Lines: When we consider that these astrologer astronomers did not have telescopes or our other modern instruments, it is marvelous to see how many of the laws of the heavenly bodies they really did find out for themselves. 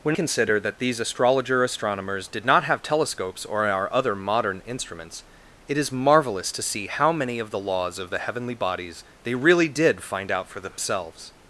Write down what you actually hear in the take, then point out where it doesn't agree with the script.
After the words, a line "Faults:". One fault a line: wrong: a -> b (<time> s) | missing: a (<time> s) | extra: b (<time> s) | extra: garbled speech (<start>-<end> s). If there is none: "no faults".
When consider that these astrologer astronomers did not have telescopes or our other modern instruments, it is marvelous to see how many of the laws of the heavenly bodies they really did find out for themselves.
Faults:
missing: we (0.2 s)